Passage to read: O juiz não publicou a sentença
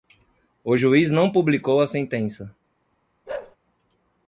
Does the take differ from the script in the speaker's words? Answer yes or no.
no